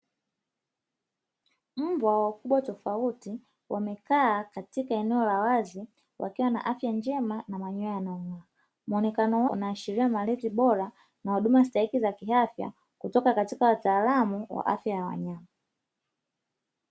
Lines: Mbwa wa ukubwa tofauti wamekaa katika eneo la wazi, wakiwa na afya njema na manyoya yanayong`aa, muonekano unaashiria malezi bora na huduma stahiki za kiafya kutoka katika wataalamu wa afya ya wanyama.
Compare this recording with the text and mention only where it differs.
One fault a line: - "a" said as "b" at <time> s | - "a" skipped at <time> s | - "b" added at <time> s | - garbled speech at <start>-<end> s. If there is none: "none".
none